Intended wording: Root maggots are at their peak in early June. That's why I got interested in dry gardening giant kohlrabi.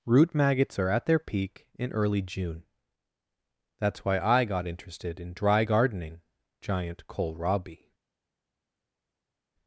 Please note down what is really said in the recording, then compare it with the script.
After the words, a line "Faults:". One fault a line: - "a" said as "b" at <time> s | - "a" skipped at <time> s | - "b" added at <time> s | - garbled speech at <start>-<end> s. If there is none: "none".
Root maggots are at their peak in early June. That's why I got interested in dry gardening giant kohlrabi.
Faults:
none